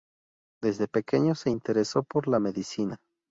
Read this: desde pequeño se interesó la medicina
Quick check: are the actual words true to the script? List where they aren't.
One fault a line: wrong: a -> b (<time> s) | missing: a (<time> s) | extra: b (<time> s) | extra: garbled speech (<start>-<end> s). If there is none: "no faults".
extra: por (2.0 s)